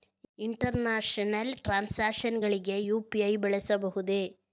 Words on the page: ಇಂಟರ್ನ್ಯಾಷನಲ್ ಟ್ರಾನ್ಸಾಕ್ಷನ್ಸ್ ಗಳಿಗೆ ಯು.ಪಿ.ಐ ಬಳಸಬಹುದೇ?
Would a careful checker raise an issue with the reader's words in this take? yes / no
no